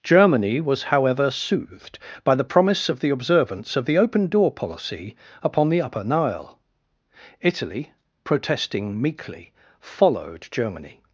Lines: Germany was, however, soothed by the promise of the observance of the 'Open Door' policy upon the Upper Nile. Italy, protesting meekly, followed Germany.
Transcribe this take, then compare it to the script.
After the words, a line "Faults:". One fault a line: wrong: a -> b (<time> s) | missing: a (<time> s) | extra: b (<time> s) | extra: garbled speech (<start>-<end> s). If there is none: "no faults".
Germany was, however, soothed by the promise of the observance of the 'Open Door' policy upon the Upper Nile. Italy, protesting meekly, followed Germany.
Faults:
no faults